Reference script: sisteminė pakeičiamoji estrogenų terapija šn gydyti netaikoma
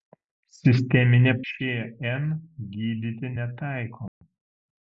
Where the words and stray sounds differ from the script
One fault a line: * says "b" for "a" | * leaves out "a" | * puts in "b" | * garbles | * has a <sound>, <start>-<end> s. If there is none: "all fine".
* leaves out "pakeičiamoji estrogenų terapija"
* has a dropout, 4.1-4.2 s